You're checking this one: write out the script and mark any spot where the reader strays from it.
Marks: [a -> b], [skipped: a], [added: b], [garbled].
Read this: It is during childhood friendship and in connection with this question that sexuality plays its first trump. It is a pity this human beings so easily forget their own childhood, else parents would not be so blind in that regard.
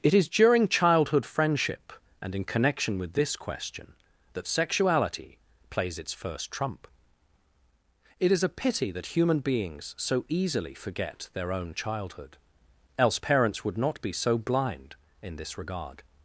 It is during childhood friendship and in connection with this question that sexuality plays its first trump. It is a pity [this -> that] human beings so easily forget their own childhood, else parents would not be so blind in [that -> this] regard.